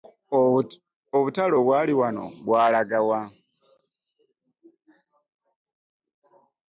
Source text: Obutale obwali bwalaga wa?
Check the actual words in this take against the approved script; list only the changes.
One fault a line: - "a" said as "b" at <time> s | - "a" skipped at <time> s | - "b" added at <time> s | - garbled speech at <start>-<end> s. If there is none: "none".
- "wano" added at 2.0 s